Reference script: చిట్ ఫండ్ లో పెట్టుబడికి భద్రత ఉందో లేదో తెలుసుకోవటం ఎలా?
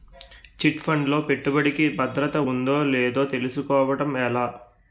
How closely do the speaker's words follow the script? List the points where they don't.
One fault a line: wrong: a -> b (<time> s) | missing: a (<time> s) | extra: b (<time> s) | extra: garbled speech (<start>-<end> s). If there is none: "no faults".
no faults